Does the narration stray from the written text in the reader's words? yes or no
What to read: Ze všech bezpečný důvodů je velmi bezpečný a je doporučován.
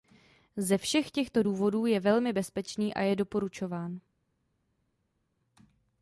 yes